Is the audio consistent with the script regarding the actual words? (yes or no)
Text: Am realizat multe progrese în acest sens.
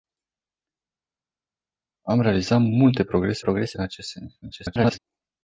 no